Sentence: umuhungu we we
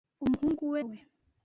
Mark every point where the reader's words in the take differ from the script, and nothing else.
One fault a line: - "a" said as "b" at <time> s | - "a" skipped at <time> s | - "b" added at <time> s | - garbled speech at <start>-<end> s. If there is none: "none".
none